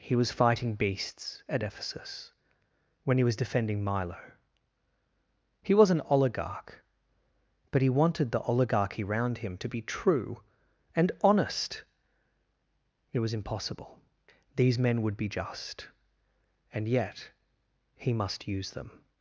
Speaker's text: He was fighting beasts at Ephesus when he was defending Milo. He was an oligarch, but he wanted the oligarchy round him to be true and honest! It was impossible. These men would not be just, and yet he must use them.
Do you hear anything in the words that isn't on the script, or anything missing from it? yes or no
yes